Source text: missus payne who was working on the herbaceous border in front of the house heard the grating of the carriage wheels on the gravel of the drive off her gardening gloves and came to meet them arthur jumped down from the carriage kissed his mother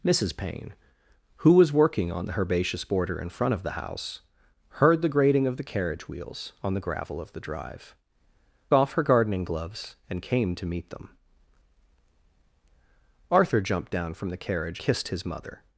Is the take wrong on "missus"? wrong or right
right